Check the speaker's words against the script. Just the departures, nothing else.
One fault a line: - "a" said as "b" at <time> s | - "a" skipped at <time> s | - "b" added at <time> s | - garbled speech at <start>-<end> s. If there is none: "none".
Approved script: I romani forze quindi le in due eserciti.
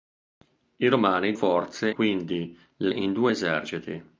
none